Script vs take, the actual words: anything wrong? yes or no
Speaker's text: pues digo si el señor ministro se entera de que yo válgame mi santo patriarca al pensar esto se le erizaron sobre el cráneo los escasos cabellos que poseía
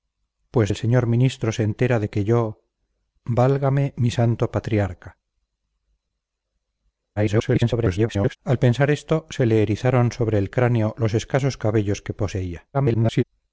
yes